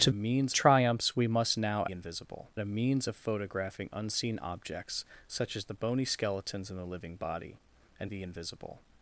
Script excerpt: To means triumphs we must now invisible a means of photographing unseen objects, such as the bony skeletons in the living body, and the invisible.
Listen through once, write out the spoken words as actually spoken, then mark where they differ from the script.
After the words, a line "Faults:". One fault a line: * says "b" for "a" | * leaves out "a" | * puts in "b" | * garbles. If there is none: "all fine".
To means triumphs we must now invisible a means of photographing unseen objects, such as the bony skeletons in the living body, and the invisible.
Faults:
all fine